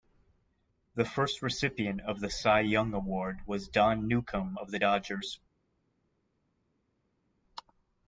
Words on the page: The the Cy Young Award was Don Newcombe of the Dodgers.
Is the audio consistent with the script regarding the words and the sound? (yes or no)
no